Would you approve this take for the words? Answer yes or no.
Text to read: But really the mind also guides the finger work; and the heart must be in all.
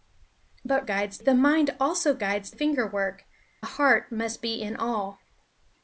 no